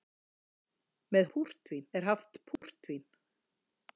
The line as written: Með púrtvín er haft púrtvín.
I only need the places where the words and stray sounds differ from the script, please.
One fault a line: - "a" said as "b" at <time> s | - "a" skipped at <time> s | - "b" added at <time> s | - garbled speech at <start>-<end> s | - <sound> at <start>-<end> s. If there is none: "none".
- dropout at 2.6-2.6 s